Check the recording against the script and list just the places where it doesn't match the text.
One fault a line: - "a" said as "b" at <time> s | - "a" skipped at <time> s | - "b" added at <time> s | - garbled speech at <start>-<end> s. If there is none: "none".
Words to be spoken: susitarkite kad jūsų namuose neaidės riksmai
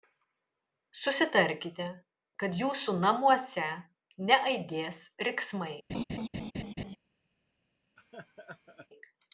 none